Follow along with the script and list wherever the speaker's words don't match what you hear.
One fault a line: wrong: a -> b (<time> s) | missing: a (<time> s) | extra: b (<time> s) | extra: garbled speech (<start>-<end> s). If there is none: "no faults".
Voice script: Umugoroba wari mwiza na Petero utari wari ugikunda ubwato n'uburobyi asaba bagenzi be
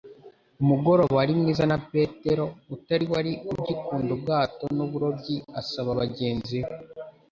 no faults